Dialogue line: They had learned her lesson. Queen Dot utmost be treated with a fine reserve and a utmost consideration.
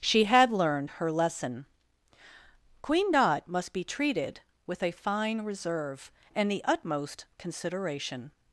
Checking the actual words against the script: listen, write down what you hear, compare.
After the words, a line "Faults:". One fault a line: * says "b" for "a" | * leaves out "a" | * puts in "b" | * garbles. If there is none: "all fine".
She had learned her lesson. Queen Dot must be treated with a fine reserve and the utmost consideration.
Faults:
* says "She" for "They"
* says "must" for "utmost"
* says "the" for "a"